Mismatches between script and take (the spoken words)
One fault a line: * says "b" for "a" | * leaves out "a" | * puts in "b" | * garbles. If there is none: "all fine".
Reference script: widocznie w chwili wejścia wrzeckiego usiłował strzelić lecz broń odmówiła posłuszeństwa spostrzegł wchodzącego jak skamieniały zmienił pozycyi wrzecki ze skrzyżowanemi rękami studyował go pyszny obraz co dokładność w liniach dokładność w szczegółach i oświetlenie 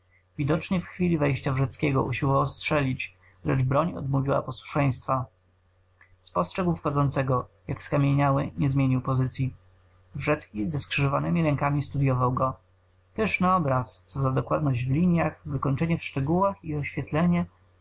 * puts in "nie"
* puts in "za"
* says "wykończenie" for "dokładność"